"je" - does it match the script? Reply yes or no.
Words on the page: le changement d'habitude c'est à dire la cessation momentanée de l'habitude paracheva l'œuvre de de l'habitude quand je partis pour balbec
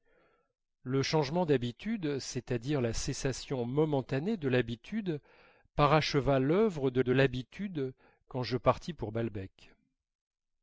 yes